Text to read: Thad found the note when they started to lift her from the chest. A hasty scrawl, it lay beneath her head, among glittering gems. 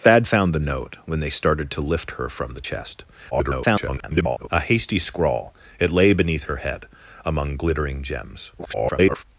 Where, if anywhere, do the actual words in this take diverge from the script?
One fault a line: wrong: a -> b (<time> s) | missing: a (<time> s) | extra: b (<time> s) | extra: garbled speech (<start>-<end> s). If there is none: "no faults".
extra: garbled speech (3.3-4.5 s)
extra: garbled speech (8.6-9.2 s)